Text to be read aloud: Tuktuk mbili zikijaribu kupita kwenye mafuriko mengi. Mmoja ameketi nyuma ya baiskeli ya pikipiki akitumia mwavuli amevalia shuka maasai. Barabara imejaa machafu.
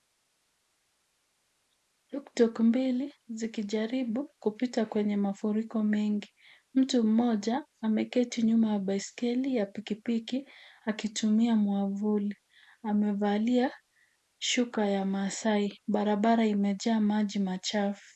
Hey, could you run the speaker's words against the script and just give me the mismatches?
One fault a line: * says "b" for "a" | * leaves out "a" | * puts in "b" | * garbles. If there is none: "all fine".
* puts in "Mtu"
* puts in "ya"
* puts in "maji"